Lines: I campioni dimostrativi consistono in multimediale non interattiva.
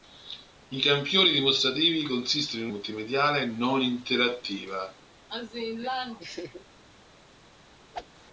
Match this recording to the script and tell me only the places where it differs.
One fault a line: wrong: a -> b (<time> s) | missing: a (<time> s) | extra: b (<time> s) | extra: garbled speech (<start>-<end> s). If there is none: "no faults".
no faults